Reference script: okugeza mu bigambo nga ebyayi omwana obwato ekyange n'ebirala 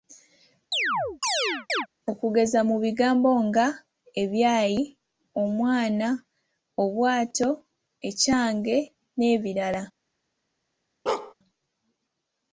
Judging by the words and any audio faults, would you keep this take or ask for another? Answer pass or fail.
fail